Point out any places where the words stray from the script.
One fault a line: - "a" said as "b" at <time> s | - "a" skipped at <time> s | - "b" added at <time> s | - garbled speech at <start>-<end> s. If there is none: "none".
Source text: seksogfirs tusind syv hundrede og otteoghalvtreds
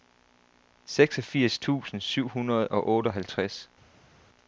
none